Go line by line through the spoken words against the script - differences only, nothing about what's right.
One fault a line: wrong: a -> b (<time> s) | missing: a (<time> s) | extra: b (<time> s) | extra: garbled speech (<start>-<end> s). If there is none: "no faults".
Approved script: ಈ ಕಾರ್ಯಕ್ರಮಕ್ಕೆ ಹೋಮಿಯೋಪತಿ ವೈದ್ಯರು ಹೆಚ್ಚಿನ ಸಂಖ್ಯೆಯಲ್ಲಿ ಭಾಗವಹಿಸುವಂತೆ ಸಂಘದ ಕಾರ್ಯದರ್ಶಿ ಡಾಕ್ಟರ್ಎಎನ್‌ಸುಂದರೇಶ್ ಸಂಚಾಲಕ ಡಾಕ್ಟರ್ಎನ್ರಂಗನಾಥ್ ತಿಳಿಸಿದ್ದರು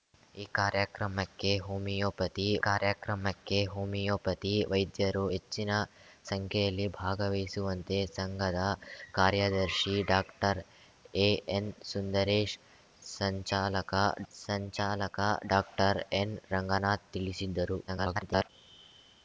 extra: ಕಾರ್ಯಕ್ರಮಕ್ಕೆ ಹೋಮಿಯೋಪತಿ (2.6 s)
extra: ಸಂಚಾಲಕ (14.3 s)
extra: garbled speech (17.9-18.5 s)